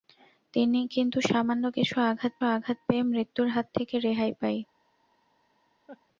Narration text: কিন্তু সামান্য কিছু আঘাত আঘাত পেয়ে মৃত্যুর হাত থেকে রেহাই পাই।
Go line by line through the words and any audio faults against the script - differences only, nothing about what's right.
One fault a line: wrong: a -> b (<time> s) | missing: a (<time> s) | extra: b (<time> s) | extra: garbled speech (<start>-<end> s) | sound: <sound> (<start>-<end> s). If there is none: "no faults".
sound: laugh (5.9-6.0 s)